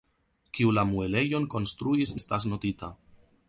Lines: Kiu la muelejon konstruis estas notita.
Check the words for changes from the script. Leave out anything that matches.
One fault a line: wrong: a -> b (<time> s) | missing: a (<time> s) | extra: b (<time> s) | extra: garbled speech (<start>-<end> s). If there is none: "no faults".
no faults